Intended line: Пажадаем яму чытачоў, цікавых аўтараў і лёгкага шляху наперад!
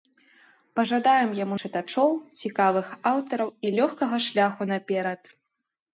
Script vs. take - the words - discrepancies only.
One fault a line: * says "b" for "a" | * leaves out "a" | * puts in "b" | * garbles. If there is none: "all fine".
all fine